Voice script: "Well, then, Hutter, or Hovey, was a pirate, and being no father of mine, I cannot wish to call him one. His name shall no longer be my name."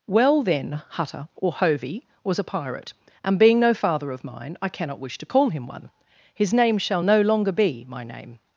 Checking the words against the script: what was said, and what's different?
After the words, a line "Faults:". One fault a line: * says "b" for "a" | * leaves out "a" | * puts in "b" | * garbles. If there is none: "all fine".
"Well, then, Hutter, or Hovey, was a pirate, and being no father of mine, I cannot wish to call him one. His name shall no longer be my name."
Faults:
all fine